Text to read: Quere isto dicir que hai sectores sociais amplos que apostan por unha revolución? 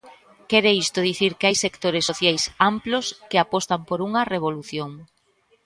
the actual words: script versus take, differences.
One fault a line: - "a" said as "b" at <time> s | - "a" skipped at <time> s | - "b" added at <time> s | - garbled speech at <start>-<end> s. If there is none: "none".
none